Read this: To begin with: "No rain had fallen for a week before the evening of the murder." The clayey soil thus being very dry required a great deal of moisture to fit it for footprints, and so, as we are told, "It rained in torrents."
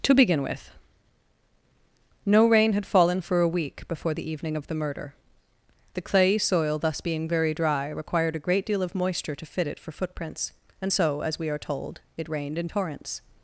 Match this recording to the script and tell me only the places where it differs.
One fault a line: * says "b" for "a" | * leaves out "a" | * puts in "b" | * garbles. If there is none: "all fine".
all fine